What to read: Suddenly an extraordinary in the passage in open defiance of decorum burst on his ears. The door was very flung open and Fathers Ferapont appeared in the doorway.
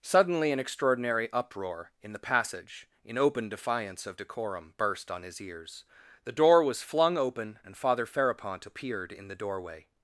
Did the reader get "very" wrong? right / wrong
wrong